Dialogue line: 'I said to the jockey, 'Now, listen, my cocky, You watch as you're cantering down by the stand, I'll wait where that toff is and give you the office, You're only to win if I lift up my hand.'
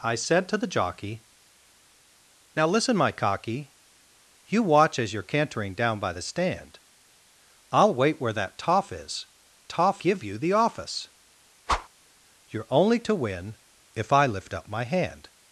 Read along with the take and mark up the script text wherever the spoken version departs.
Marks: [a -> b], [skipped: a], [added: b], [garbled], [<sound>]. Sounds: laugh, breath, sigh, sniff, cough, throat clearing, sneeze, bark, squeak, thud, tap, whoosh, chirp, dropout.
'I said to the jockey, 'Now, listen, my cocky, You watch as you're cantering down by the stand, I'll wait where that toff is [and -> toff] give you the office, [whoosh] You're only to win if I lift up my hand.'